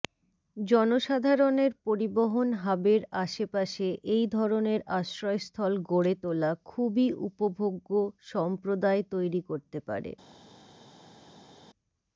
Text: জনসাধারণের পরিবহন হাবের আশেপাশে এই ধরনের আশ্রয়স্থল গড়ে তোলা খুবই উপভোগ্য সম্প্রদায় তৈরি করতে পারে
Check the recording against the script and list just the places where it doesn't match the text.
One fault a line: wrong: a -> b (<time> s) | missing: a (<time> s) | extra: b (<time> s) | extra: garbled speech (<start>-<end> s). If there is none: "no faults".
no faults